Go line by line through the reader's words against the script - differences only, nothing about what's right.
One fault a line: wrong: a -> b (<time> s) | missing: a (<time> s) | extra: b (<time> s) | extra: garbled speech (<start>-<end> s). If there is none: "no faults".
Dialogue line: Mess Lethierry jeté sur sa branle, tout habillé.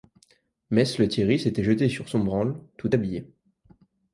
extra: s'était (1.4 s)
wrong: sa -> son (2.1 s)